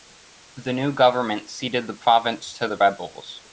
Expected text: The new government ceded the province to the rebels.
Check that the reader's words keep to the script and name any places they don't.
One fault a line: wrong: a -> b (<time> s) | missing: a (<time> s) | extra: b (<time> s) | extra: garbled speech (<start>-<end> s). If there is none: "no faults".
no faults